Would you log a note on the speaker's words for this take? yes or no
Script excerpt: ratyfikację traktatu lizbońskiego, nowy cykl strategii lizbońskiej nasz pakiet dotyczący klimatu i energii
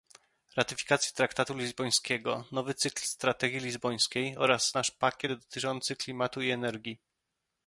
yes